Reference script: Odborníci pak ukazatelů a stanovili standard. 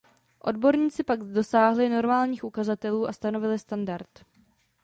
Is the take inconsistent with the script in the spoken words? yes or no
yes